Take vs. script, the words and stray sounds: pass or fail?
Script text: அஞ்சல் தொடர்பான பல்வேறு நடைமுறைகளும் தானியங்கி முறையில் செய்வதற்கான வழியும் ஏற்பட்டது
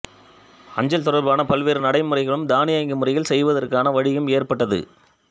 pass